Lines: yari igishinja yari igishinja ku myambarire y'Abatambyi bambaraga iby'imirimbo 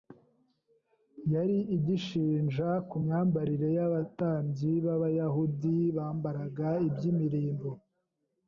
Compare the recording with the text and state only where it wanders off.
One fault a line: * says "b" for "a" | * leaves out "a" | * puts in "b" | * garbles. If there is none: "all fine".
* leaves out "yari igishinja"
* puts in "b'Abayahudi"